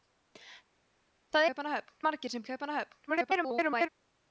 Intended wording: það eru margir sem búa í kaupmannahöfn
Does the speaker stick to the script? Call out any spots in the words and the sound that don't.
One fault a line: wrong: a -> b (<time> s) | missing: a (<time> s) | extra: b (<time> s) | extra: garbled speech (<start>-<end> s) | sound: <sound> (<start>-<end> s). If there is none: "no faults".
wrong: eru -> kaupmannahöfn (1.5 s)
missing: búa (2.5 s)
extra: garbled speech (3.1-3.9 s)